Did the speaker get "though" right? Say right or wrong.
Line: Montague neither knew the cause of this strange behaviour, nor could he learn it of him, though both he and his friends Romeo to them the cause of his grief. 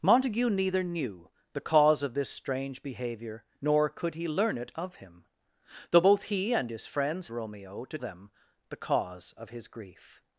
right